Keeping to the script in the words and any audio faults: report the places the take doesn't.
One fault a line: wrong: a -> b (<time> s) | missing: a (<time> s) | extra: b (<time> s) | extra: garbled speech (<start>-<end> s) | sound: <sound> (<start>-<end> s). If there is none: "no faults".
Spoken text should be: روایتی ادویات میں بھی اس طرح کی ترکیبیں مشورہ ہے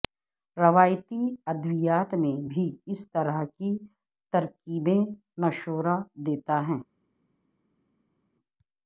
extra: دیتا (6.3 s)